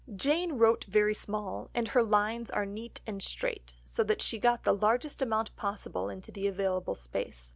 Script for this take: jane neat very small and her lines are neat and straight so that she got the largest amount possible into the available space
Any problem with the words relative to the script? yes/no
yes